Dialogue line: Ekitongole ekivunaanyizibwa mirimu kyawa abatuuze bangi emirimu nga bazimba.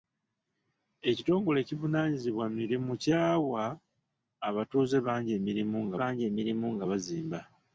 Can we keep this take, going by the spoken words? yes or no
no